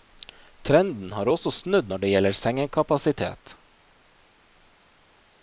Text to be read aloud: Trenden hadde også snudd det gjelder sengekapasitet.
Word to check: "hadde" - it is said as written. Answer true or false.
false